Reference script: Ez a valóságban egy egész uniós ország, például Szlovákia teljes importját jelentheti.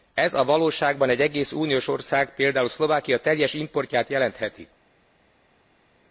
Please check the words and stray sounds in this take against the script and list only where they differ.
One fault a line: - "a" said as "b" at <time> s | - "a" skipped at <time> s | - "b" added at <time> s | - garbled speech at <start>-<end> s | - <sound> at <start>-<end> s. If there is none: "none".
none